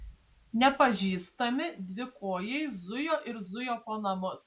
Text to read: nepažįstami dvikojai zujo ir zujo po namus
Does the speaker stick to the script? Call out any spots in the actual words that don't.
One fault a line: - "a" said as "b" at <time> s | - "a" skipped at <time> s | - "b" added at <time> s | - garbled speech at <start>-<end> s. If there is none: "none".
none